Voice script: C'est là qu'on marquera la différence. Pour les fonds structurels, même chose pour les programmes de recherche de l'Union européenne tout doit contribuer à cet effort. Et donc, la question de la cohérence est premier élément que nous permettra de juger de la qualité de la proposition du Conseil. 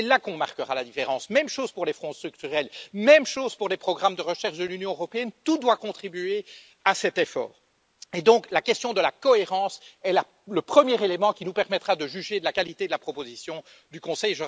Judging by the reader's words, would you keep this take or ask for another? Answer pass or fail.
fail